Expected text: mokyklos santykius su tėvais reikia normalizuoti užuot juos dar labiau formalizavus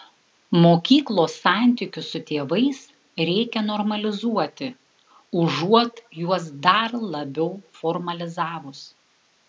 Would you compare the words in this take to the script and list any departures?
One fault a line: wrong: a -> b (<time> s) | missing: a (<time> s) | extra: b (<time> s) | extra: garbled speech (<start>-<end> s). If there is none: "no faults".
no faults